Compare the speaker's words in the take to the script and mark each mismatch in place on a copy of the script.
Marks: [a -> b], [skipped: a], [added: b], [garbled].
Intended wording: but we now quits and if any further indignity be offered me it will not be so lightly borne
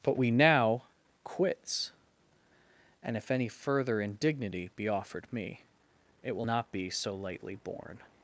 but we now quits and if any further indignity be offered me it will not be so lightly borne